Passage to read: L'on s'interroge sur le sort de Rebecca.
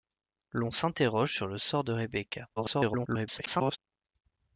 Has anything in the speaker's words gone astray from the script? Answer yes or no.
yes